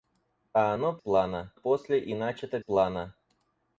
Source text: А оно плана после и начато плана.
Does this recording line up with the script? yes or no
yes